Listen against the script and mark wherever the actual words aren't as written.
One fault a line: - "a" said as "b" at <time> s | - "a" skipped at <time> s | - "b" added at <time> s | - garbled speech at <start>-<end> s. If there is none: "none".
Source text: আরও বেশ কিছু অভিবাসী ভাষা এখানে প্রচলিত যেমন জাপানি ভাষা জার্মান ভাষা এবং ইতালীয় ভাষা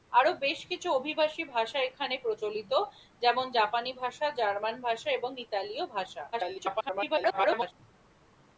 - garbled speech at 6.3-7.7 s